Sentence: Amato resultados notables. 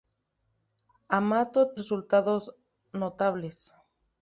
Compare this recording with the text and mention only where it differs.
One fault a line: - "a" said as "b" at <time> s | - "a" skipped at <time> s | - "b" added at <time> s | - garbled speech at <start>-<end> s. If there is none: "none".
none